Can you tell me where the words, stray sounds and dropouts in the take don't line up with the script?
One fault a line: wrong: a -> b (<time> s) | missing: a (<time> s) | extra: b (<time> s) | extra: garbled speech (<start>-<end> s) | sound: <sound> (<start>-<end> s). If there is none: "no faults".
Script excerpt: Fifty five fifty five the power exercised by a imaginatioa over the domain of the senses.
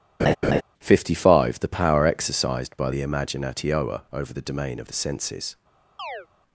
sound: laugh (0.2-0.6 s)
missing: fifty five (1.6 s)
wrong: a -> the (2.9 s)
sound: chirp (6.0-6.3 s)